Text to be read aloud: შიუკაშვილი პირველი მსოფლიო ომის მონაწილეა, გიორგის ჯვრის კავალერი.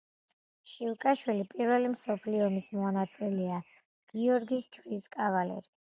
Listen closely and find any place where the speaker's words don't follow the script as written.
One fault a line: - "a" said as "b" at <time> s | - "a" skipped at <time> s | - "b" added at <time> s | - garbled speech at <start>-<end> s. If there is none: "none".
none